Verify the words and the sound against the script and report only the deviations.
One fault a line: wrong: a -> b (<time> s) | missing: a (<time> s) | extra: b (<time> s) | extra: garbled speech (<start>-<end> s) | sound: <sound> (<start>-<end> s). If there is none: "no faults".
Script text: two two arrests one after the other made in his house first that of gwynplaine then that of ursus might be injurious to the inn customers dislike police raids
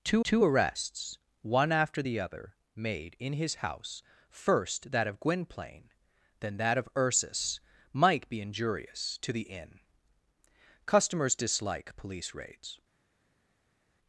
no faults